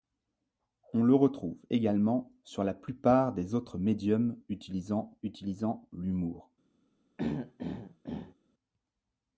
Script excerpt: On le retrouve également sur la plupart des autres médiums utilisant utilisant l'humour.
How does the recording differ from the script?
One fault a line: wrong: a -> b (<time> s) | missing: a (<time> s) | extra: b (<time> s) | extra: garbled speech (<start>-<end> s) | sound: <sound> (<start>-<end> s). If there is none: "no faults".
sound: throat clearing (7.2-8.3 s)